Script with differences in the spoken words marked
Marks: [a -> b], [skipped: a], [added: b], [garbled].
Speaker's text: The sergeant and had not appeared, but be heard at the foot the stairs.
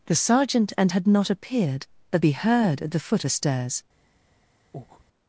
The sergeant and had not appeared, but be heard at the foot the stairs.